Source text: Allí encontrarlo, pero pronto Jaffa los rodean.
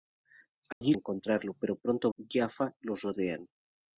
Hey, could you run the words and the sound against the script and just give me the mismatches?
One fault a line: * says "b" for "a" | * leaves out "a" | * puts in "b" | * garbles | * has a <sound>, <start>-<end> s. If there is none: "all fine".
* has a dropout, 0.7-0.8 s